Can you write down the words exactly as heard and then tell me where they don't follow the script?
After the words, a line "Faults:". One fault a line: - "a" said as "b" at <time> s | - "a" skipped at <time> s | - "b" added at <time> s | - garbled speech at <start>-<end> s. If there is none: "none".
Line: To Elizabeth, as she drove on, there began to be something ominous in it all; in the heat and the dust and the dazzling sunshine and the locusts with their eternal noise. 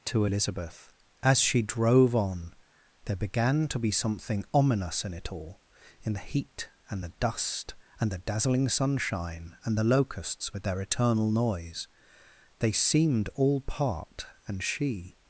To Elizabeth, as she drove on, there began to be something ominous in it all; in the heat and the dust and the dazzling sunshine and the locusts with their eternal noise. They seemed all part, and she
Faults:
- "They seemed all part and she" added at 12.6 s